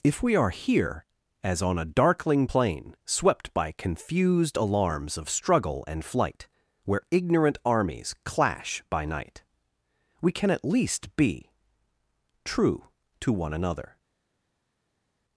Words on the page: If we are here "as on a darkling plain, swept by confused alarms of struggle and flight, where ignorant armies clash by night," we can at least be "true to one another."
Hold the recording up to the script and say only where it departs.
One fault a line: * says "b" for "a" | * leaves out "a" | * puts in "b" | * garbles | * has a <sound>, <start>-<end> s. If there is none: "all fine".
all fine